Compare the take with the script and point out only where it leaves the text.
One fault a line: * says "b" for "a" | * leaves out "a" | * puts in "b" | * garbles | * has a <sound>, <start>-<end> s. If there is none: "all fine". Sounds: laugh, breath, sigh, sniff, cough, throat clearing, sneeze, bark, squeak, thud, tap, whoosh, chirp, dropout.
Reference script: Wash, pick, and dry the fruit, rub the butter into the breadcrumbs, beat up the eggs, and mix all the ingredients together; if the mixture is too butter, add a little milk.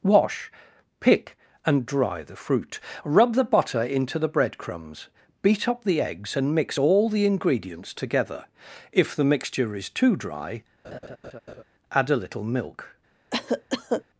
* says "dry" for "butter"
* has a laugh, 10.8-11.6 s
* has a cough, 13.3-14.0 s